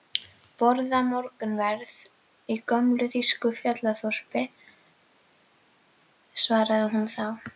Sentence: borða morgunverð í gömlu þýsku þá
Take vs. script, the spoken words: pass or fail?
fail